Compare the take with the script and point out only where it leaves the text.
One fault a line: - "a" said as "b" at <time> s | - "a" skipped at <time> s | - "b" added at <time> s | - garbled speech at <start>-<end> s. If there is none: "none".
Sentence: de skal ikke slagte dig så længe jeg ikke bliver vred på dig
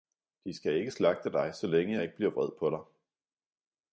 none